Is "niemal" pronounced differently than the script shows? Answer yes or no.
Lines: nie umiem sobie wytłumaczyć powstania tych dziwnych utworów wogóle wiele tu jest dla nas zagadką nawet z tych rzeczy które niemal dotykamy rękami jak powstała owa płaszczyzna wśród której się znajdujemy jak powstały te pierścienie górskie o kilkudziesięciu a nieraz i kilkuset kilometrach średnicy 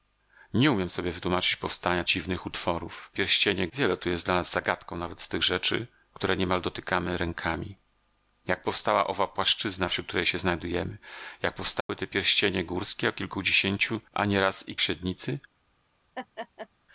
no